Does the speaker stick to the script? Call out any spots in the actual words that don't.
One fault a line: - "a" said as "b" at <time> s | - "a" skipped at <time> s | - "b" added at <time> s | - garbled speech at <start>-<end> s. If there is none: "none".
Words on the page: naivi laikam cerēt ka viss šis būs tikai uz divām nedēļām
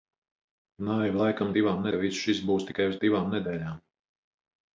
- "cerēt" said as "divām" at 1.6 s